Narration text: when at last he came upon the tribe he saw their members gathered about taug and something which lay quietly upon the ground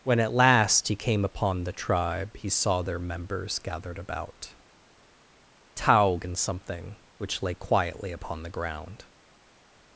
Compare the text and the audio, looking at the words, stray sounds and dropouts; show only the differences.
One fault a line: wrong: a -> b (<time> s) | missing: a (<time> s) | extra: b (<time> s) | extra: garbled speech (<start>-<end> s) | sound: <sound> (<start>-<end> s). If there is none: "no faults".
no faults